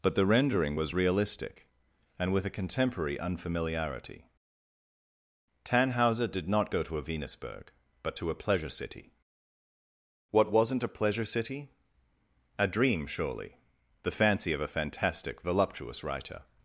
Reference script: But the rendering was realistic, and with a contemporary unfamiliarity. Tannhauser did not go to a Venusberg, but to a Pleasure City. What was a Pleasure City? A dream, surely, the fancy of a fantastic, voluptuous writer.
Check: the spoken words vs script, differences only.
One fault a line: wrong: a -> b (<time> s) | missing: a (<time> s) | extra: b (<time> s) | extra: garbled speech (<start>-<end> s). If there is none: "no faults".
wrong: was -> wasn't (10.5 s)